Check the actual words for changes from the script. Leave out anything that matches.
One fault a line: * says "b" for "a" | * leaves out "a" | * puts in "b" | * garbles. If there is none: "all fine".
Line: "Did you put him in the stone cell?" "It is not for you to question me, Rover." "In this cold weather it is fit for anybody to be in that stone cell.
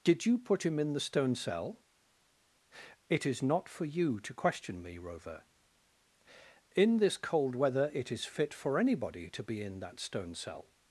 all fine